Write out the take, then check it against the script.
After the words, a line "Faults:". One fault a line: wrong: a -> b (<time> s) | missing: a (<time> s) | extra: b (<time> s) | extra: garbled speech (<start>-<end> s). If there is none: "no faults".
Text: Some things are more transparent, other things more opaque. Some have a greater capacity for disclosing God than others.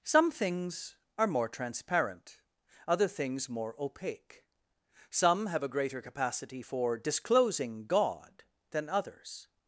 Some things are more transparent, other things more opaque. Some have a greater capacity for disclosing God than others.
Faults:
no faults